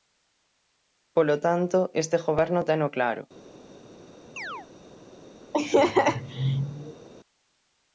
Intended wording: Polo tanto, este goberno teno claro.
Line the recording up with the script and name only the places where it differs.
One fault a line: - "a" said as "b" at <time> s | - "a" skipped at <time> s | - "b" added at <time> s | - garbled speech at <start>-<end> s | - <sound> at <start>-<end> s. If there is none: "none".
- chirp at 4.4-4.7 s
- laugh at 5.5-7.1 s